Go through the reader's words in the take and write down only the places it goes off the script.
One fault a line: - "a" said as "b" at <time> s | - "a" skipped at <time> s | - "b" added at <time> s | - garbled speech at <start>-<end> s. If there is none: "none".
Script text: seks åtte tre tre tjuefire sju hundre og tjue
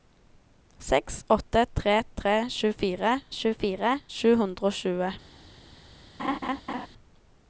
- "tjuefire" added at 3.4 s